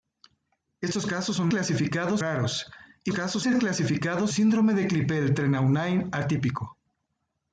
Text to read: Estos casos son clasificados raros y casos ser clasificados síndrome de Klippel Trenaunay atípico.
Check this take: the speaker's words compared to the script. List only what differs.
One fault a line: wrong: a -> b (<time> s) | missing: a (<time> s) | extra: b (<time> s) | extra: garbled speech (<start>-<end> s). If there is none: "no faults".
no faults